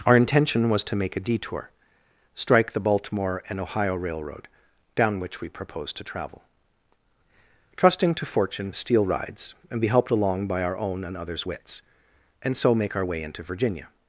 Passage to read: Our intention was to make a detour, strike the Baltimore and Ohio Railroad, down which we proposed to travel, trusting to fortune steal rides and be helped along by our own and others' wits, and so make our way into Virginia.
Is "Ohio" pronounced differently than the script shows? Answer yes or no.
no